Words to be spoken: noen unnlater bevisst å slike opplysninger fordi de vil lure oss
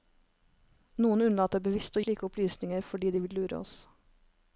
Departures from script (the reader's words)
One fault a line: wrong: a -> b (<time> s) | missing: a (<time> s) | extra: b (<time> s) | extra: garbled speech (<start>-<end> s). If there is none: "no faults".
no faults